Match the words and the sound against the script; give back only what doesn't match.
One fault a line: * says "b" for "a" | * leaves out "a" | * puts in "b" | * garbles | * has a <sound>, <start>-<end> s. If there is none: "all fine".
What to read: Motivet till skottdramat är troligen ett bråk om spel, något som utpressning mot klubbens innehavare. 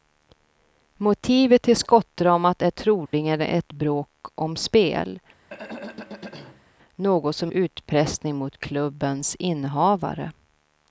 * has a dropout, 3.1-3.1 s
* has a throat clearing, 5.5-6.7 s